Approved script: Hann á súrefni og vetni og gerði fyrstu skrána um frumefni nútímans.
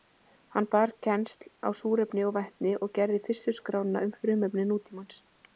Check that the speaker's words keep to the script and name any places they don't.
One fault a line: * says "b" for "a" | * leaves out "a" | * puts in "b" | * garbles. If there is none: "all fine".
* puts in "bar kennsl"